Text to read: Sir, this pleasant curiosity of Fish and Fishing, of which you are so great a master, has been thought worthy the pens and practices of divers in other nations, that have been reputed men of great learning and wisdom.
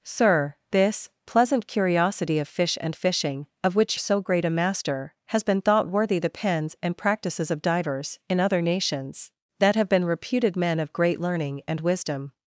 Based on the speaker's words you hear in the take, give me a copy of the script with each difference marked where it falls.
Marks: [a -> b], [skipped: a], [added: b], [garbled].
Sir, this pleasant curiosity of Fish and Fishing, of which [skipped: you are] so great a master, has been thought worthy the pens and practices of divers in other nations, that have been reputed men of great learning and wisdom.